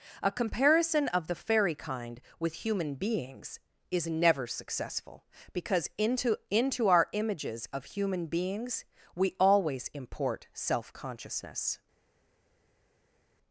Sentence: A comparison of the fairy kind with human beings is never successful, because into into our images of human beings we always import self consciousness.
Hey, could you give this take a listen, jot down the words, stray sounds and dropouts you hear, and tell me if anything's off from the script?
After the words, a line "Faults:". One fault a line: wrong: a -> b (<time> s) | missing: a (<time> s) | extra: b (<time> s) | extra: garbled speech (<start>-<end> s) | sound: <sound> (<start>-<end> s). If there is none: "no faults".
A comparison of the fairy kind with human beings is never successful, because into into our images of human beings we always import self consciousness.
Faults:
no faults